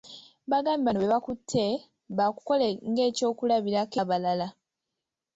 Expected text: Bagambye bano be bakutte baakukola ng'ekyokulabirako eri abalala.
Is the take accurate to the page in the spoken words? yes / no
no